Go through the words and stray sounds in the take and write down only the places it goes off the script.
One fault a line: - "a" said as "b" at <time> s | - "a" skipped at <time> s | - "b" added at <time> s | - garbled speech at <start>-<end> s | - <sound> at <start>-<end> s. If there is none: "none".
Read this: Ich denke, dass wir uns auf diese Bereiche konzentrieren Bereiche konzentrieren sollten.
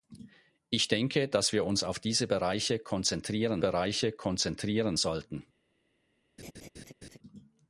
- laugh at 6.4-7.2 s